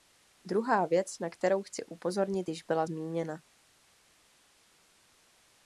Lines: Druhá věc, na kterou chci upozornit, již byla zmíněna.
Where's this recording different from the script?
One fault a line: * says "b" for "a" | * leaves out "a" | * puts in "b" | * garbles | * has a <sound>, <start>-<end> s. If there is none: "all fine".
all fine